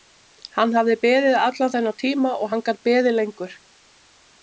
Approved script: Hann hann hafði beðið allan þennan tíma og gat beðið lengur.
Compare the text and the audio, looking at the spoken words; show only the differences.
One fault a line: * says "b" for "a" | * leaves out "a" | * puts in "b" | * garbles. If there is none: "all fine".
* leaves out "hann"
* puts in "hann"